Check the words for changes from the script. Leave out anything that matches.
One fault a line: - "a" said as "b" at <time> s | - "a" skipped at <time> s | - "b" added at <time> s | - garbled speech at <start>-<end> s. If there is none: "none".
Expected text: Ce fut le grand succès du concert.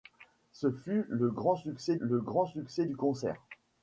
- "le grand succès" added at 2.0 s